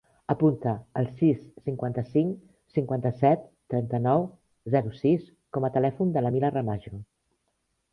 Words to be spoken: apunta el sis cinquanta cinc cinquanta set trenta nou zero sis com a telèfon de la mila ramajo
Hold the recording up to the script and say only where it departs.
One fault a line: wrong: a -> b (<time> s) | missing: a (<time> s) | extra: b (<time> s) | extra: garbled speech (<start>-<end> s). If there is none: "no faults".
no faults